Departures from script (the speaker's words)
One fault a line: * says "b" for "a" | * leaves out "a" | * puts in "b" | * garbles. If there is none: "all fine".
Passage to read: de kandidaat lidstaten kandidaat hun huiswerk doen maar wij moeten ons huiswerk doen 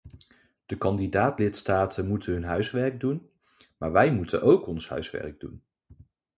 * says "moeten" for "kandidaat"
* puts in "ook"